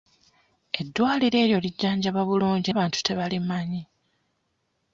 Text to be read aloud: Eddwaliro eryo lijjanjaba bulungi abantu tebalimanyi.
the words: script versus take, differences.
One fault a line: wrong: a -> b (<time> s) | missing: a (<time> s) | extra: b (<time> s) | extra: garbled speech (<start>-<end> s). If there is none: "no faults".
no faults